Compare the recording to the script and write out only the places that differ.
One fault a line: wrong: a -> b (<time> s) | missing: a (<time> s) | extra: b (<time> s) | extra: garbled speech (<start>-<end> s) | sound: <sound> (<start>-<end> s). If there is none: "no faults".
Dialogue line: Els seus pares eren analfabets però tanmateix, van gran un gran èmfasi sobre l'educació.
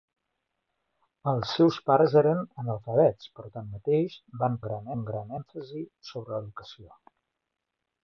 no faults